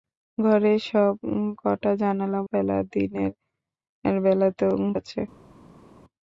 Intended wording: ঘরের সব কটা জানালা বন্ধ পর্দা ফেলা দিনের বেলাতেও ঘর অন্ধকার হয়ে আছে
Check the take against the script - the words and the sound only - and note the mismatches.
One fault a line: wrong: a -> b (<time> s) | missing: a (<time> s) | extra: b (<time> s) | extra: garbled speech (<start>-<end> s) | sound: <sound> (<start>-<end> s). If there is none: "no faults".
missing: বন্ধ পর্দা (2.4 s)
missing: ঘর অন্ধকার হয়ে (4.7 s)